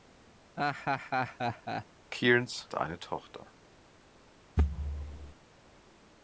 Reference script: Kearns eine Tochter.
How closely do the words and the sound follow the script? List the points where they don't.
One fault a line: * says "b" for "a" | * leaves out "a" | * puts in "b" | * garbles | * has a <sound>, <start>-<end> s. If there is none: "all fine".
* has a laugh, 0.6-1.9 s
* has a thud, 4.6-5.3 s